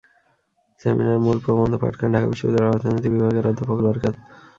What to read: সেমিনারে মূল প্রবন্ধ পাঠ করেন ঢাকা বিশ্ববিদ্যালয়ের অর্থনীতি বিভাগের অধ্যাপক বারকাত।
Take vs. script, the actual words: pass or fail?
pass